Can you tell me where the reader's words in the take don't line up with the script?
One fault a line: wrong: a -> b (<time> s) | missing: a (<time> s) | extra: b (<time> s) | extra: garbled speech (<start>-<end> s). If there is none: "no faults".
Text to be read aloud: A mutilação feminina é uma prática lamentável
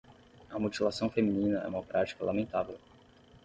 no faults